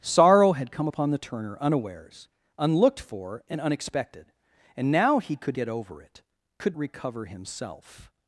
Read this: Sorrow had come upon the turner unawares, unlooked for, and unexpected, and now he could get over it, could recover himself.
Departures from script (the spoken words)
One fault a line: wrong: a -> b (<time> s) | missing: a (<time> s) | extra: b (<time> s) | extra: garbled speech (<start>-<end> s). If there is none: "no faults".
no faults